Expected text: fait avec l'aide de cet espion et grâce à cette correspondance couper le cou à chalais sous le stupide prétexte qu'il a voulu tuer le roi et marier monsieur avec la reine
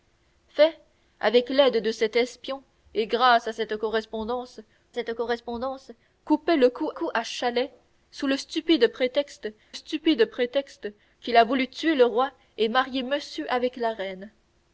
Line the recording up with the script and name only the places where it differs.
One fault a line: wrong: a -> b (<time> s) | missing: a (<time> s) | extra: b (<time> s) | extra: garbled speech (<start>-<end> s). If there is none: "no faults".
extra: cette correspondance (4.9 s)
extra: cou (6.9 s)
extra: stupide prétexte (9.7 s)